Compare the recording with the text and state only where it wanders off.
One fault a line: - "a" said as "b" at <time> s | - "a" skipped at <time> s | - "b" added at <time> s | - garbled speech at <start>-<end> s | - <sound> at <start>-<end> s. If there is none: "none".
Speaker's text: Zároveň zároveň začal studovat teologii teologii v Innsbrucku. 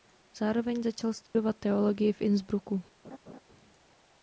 - "zároveň" skipped at 0.8 s
- dropout at 1.3-1.4 s
- "teologii" skipped at 2.1 s
- laugh at 3.0-3.4 s